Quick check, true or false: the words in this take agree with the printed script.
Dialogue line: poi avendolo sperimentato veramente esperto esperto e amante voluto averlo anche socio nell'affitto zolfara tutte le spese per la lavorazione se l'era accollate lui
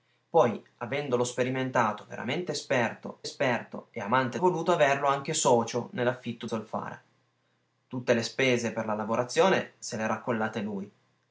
true